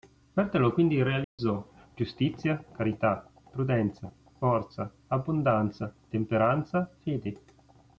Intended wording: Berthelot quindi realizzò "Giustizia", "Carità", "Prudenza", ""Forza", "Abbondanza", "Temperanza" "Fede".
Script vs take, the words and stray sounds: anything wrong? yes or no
yes